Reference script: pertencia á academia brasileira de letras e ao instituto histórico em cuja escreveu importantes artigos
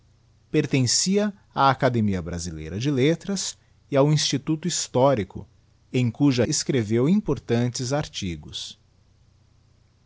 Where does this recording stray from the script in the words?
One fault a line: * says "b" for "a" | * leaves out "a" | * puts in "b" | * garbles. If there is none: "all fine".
all fine